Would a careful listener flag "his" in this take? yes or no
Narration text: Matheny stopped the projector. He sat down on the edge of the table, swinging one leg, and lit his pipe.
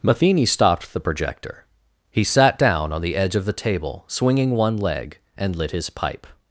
no